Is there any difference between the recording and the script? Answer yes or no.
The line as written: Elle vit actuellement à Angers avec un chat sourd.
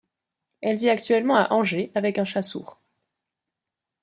no